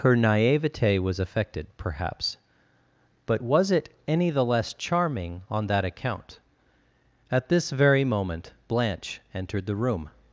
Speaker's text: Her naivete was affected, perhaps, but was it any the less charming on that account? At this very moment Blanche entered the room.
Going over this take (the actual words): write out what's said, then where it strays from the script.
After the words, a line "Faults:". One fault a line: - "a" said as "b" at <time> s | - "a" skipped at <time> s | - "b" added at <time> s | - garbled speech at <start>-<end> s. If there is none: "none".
Her naivete was affected, perhaps, but was it any the less charming on that account? At this very moment Blanche entered the room.
Faults:
none